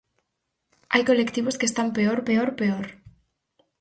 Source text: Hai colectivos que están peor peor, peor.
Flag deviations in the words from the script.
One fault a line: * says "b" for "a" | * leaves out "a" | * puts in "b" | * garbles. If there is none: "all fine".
all fine